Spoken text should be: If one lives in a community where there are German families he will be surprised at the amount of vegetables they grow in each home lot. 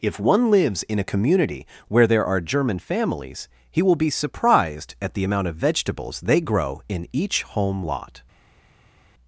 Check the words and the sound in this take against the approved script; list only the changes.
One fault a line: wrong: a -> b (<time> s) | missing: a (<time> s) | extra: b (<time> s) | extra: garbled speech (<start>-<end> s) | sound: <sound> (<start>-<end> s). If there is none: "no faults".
no faults